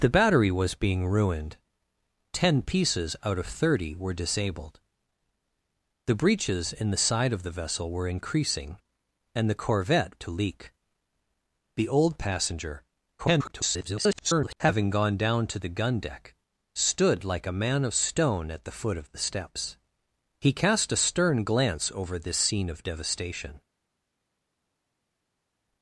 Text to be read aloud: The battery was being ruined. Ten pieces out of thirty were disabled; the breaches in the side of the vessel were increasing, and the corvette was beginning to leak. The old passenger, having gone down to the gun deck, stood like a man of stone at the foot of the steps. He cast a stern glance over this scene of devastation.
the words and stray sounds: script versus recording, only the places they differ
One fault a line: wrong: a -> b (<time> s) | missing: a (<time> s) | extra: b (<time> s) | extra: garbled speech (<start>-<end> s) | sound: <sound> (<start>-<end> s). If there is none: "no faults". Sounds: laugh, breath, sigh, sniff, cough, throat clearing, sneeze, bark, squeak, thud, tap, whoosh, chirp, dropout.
missing: was beginning (10.1 s)
extra: garbled speech (13.2-14.6 s)